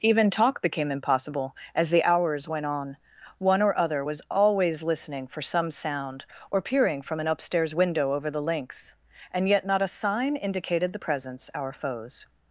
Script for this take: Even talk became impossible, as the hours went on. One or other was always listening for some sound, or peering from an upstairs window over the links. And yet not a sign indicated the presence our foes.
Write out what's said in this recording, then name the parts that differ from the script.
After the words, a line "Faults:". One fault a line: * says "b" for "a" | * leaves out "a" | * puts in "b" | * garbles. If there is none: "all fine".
Even talk became impossible, as the hours went on. One or other was always listening for some sound, or peering from an upstairs window over the links. And yet not a sign indicated the presence our foes.
Faults:
all fine